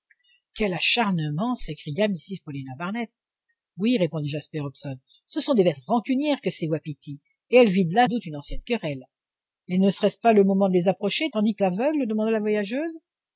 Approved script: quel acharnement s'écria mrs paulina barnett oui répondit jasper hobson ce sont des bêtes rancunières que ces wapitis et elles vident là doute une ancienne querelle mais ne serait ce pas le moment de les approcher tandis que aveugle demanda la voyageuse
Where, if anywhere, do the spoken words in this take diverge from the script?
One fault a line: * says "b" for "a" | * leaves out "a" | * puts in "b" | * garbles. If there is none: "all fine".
all fine